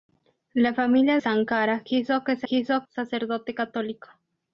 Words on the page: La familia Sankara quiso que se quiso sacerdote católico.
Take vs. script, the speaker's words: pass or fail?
pass